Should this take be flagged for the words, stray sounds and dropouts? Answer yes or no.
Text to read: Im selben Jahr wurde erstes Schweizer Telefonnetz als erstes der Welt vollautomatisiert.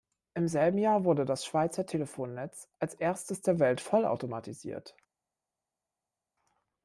yes